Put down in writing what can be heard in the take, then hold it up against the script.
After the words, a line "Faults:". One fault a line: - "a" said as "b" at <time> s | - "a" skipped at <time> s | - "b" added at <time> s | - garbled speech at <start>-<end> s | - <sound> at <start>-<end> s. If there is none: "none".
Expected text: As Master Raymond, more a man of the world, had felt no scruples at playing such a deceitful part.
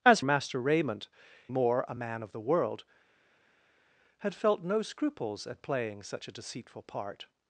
As Master Raymond, more a man of the world, had felt no scruples at playing such a deceitful part.
Faults:
none